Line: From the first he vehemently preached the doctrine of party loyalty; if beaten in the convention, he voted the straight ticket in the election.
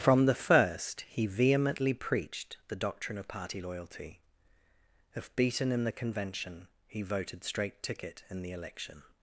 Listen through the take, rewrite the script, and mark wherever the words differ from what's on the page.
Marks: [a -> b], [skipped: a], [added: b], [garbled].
From the first he vehemently preached the doctrine of party loyalty; if beaten in the convention, he voted [skipped: the] straight ticket in the election.